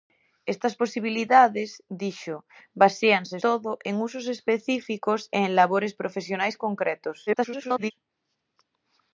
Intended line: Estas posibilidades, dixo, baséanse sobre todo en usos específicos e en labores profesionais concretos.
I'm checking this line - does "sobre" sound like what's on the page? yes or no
no